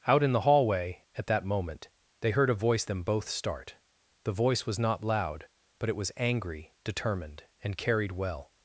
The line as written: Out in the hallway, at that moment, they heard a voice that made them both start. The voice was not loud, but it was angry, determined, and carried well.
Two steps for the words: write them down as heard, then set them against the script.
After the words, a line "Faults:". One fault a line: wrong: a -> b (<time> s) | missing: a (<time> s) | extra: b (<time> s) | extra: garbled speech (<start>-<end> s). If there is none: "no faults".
Out in the hallway, at that moment, they heard a voice them both start. The voice was not loud, but it was angry, determined, and carried well.
Faults:
missing: that made (2.9 s)